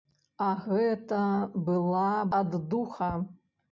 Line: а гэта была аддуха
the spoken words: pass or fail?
pass